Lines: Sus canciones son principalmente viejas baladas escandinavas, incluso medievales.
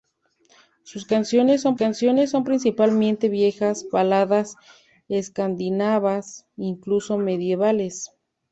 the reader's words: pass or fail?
fail